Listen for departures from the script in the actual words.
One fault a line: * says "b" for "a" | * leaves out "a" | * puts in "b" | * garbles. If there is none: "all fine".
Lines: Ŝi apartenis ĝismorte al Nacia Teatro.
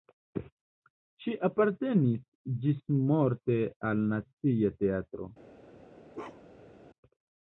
all fine